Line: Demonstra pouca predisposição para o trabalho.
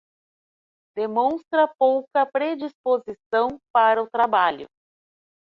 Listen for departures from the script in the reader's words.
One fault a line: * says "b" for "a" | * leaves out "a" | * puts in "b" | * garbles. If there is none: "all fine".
all fine